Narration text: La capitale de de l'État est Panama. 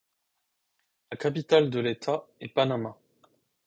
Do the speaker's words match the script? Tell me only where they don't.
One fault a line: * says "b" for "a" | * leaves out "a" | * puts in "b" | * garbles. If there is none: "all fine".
* leaves out "de"